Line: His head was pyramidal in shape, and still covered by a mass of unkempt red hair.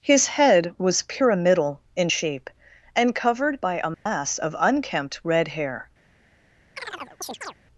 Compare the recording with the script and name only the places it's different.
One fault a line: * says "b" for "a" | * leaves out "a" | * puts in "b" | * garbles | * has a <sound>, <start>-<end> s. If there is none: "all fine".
* leaves out "still"
* has a dropout, 3.9-4.1 s
* has a chirp, 6.8-7.5 s